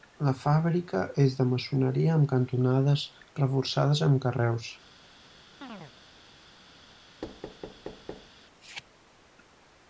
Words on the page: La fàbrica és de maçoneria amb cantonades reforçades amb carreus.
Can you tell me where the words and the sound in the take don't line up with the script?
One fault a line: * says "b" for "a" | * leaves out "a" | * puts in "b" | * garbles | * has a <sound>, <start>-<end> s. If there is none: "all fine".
* has a chirp, 5.6-5.9 s
* has a thud, 7.2-8.3 s